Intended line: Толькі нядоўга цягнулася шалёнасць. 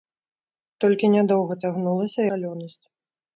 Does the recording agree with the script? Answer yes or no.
yes